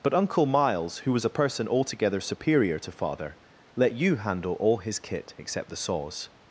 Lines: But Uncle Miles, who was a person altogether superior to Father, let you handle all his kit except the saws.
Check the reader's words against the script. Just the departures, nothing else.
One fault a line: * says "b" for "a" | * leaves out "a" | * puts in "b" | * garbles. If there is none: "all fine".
all fine